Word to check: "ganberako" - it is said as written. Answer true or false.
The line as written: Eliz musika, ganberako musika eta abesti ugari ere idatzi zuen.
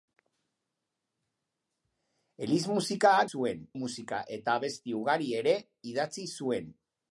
false